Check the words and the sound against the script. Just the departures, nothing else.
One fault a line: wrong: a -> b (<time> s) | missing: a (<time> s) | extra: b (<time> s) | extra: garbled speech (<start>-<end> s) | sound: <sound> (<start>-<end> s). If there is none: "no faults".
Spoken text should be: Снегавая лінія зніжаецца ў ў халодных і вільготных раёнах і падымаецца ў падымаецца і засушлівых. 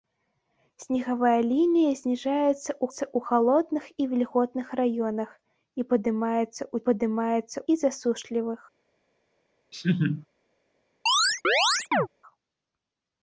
sound: laugh (9.7-10.3 s)
sound: chirp (11.1-12.1 s)